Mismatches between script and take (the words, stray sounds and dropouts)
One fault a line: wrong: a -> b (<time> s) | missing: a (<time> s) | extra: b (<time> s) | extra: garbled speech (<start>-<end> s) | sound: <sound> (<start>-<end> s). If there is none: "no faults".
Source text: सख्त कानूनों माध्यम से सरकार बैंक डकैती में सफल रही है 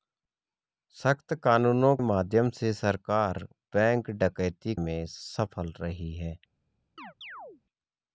sound: chirp (7.0-7.6 s)